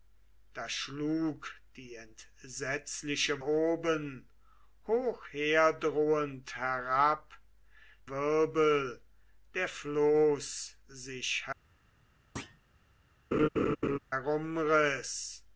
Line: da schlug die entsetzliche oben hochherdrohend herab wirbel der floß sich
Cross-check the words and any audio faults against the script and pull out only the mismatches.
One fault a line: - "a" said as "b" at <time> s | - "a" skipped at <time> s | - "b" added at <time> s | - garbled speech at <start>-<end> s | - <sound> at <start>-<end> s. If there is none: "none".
- thud at 12.4-12.6 s
- laugh at 13.3-14.0 s